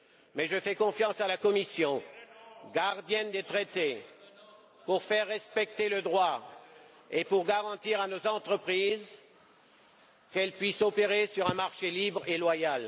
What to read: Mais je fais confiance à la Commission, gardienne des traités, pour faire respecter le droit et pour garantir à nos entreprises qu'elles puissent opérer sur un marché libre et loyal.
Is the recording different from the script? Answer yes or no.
no